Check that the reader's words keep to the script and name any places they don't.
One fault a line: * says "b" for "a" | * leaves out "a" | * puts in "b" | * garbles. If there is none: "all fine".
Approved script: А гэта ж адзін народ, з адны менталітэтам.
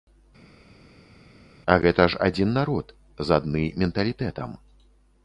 all fine